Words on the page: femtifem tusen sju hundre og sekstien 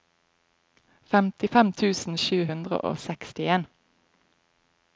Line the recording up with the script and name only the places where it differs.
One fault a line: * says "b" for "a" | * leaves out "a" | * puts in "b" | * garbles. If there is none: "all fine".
all fine